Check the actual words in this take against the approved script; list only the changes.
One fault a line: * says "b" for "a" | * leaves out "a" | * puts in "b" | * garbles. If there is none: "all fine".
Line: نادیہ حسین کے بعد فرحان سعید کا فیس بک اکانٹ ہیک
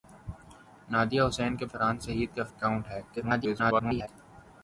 * leaves out "بعد"
* leaves out "فیس بک"
* garbles